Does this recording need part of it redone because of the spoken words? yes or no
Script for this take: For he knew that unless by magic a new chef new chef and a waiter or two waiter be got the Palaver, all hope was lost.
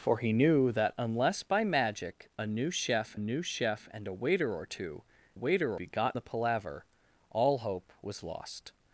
no